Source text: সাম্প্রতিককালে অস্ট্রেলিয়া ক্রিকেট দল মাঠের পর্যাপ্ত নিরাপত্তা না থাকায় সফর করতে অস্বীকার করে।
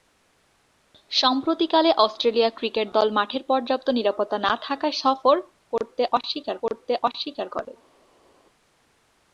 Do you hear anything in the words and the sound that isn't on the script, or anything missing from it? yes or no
yes